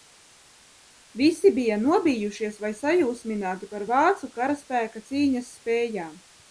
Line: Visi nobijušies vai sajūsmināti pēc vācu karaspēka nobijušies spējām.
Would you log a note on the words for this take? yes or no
yes